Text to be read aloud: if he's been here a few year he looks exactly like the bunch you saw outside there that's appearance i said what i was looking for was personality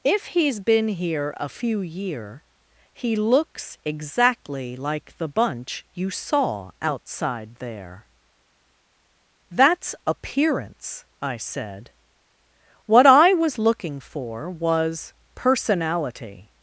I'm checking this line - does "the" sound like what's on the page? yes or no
yes